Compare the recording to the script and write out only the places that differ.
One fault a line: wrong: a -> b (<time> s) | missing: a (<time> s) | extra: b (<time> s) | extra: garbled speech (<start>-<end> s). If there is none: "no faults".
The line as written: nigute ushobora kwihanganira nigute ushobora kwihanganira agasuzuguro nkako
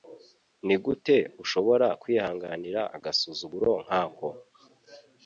missing: nigute ushobora kwihanganira (2.8 s)